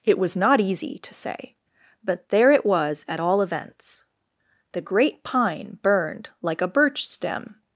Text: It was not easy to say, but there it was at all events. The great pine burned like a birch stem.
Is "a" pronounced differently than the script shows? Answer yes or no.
no